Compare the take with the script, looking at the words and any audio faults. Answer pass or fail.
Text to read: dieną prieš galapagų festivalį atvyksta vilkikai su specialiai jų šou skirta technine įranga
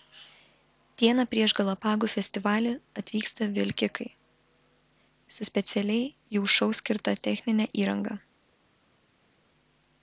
pass